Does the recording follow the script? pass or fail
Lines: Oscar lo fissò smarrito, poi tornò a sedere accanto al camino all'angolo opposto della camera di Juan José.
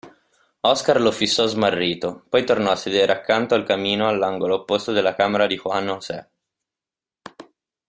pass